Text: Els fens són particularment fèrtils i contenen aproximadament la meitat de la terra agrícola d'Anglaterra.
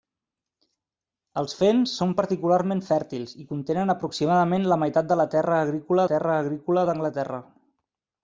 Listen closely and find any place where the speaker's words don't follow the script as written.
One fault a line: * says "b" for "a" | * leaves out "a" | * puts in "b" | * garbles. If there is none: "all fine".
* puts in "terra agrícola"